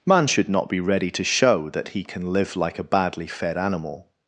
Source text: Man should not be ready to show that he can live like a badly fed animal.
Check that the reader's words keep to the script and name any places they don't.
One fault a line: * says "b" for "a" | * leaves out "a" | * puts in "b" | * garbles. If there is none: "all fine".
all fine